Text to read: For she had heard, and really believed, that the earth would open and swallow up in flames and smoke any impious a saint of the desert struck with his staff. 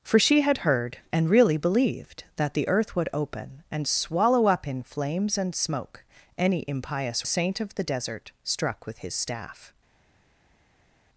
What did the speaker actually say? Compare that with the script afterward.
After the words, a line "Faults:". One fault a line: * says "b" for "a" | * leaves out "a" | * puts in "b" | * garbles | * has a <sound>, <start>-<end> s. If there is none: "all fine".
For she had heard, and really believed, that the earth would open and swallow up in flames and smoke any impious a saint of the desert struck with his staff.
Faults:
all fine